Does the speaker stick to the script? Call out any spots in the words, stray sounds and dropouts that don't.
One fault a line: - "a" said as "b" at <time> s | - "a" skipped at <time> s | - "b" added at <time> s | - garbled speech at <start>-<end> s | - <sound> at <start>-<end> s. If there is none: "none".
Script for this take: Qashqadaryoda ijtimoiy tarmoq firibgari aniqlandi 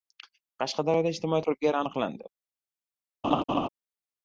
- "tarmoq" skipped at 1.4 s
- laugh at 3.2-3.7 s